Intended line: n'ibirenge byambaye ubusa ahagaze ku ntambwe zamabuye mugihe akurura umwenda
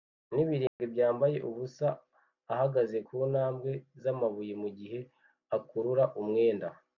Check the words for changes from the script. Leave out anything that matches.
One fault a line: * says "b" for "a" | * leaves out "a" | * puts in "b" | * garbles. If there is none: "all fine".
all fine